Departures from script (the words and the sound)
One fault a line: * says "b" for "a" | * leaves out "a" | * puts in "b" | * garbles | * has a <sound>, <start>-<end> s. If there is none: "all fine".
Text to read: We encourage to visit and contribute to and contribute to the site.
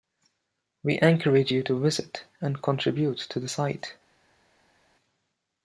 * puts in "you"
* leaves out "and contribute to"